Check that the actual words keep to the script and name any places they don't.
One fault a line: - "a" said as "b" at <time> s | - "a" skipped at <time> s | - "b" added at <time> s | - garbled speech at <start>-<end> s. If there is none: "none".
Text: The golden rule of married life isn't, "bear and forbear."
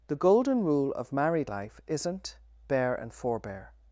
none